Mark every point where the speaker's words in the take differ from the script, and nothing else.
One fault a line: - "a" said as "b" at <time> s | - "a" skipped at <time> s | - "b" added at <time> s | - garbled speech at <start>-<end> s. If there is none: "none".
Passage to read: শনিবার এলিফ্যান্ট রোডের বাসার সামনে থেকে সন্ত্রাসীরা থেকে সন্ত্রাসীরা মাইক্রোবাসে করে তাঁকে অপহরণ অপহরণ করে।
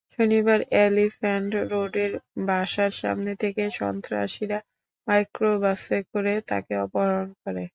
- "থেকে সন্ত্রাসীরা" skipped at 4.6 s
- "অপহরণ" skipped at 7.3 s